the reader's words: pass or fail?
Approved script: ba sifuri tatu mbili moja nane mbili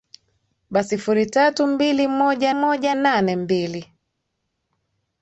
fail